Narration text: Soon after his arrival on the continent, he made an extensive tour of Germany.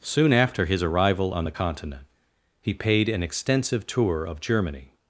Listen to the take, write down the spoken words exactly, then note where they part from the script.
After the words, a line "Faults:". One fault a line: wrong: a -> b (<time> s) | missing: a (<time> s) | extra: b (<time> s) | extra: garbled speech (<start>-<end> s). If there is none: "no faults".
Soon after his arrival on the continent, he paid an extensive tour of Germany.
Faults:
wrong: made -> paid (2.7 s)